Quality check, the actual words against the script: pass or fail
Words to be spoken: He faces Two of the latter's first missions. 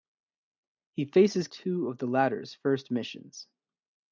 pass